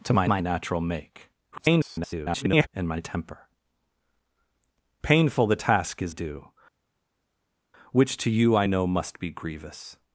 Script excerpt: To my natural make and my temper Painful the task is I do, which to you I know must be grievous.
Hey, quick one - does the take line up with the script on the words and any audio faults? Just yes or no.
no